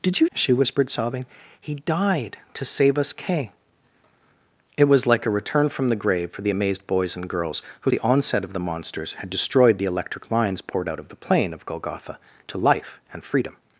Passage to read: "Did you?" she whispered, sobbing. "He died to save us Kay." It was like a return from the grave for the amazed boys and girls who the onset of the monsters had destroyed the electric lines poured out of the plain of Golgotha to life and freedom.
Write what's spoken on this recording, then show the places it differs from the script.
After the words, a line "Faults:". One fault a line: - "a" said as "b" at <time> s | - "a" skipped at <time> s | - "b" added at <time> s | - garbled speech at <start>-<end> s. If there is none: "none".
"Did you?" she whispered, sobbing. "He died to save us Kay." It was like a return from the grave for the amazed boys and girls who the onset of the monsters had destroyed the electric lines poured out of the plain of Golgotha to life and freedom.
Faults:
none